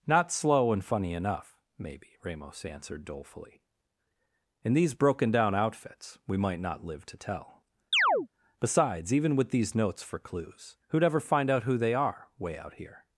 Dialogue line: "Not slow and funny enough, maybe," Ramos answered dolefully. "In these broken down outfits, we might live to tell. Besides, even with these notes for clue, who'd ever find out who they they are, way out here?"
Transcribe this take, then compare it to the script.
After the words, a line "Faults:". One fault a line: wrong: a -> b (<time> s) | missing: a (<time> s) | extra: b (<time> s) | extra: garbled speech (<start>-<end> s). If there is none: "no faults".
"Not slow and funny enough, maybe," Ramos answered dolefully. "In these broken down outfits, we might not live to tell. Besides, even with these notes for clues, who'd ever find out who they are, way out here?"
Faults:
extra: not (6.6 s)
wrong: clue -> clues (10.2 s)
missing: they (11.9 s)